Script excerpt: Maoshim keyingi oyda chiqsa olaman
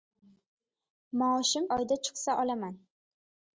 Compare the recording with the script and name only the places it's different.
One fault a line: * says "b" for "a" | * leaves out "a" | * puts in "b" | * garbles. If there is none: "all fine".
* leaves out "keyingi"